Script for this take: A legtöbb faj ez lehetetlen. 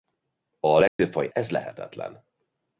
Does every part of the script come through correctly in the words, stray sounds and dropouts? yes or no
no